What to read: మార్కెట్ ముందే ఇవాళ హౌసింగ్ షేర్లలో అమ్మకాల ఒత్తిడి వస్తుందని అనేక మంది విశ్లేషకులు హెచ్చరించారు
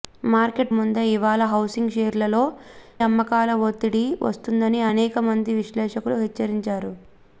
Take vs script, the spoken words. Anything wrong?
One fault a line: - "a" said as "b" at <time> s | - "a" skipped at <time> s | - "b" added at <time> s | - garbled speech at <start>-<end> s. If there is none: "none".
none